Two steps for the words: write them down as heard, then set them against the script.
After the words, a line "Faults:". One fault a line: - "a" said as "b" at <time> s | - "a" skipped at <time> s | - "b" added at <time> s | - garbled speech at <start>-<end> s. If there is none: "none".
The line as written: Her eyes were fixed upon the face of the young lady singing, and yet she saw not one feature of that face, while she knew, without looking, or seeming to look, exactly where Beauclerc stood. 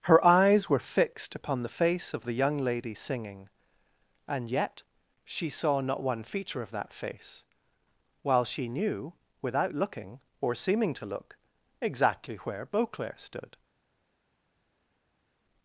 Her eyes were fixed upon the face of the young lady singing, and yet she saw not one feature of that face, while she knew, without looking, or seeming to look, exactly where Beauclerc stood.
Faults:
none